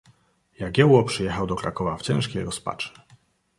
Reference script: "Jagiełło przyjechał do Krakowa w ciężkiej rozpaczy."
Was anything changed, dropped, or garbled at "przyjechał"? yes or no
no